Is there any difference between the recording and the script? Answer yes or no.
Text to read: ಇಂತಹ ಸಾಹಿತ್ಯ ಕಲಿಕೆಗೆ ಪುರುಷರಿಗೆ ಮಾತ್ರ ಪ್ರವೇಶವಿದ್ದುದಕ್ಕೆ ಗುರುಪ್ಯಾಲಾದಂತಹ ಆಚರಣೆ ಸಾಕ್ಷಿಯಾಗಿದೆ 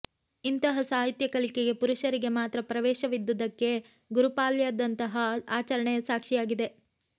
no